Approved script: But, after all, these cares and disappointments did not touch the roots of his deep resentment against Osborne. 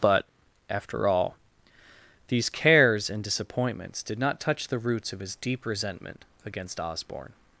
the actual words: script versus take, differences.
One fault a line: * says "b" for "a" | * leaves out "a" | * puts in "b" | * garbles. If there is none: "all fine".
all fine